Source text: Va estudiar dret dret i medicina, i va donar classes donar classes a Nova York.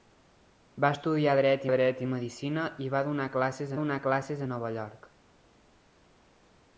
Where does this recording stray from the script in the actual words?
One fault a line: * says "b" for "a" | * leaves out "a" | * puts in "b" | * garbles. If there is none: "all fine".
all fine